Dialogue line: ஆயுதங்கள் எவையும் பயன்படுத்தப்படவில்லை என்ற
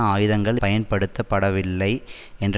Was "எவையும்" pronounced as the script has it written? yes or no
no